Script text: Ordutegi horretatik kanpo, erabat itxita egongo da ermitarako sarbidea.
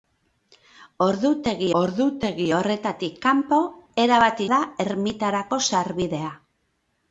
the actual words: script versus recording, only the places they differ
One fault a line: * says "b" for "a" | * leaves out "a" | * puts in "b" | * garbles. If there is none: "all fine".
* puts in "ordutegi"
* leaves out "itxita egongo"